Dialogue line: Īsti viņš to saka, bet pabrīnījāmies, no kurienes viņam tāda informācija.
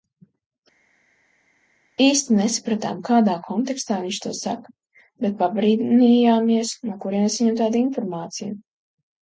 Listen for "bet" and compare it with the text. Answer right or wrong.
right